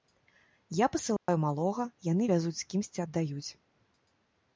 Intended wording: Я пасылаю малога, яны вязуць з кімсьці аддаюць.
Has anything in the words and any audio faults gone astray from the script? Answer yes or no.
yes